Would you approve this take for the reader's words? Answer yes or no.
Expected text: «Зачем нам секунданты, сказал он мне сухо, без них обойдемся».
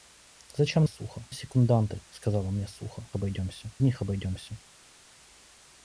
no